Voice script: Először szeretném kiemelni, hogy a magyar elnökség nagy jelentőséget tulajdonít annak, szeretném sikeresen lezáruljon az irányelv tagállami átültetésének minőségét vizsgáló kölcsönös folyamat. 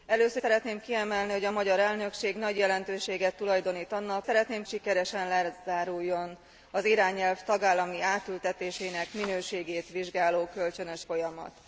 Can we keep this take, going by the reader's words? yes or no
yes